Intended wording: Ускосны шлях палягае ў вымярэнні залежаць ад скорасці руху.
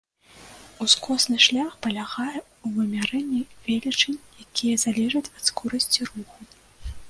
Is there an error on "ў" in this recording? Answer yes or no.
no